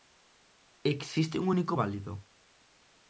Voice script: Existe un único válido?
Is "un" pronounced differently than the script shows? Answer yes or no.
no